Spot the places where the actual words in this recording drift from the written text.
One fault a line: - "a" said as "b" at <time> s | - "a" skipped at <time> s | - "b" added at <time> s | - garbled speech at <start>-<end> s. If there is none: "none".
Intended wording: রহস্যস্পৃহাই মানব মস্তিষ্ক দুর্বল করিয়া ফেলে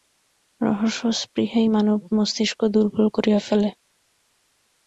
none